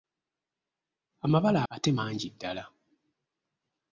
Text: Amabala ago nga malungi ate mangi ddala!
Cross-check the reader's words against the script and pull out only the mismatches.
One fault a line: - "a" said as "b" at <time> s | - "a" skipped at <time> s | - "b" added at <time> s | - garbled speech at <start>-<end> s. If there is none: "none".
- "ago nga malungi" skipped at 1.6 s